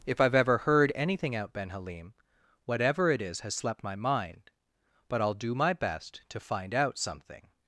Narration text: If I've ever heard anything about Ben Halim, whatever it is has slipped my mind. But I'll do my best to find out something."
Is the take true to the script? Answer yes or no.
no